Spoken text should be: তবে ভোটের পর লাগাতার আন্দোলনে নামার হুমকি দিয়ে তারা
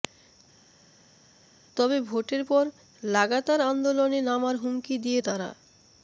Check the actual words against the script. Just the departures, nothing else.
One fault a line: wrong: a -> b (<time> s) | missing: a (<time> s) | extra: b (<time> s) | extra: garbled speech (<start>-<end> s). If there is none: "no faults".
no faults